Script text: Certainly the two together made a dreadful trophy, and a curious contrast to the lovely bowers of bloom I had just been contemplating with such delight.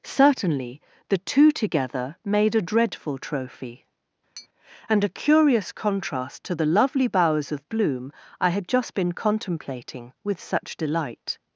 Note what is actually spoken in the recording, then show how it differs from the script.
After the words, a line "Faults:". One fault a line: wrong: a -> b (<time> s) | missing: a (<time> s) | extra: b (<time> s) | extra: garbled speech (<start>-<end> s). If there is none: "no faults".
Certainly the two together made a dreadful trophy, and a curious contrast to the lovely bowers of bloom I had just been contemplating with such delight.
Faults:
no faults